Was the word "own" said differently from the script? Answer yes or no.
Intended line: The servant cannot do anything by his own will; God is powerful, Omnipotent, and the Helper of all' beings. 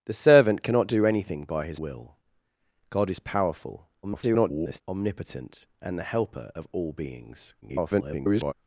yes